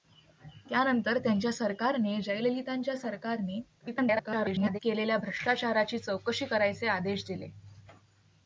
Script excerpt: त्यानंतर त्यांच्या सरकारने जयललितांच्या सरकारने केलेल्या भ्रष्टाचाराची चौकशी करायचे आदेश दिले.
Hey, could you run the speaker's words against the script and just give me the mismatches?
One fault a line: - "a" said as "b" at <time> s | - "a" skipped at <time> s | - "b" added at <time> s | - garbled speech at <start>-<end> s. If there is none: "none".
- garbled speech at 3.8-4.8 s